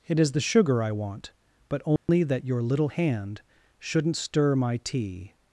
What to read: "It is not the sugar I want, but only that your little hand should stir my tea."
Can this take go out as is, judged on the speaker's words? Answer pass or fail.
fail